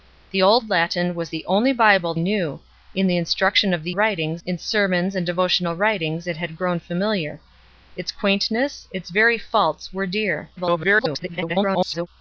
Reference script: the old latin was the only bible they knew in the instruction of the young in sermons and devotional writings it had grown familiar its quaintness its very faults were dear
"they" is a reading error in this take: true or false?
true